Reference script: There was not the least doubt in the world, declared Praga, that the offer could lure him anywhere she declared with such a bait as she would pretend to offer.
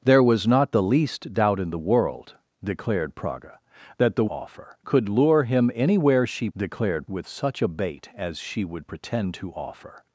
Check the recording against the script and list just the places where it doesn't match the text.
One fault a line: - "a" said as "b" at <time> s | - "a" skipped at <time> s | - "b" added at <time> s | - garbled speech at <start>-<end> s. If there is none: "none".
none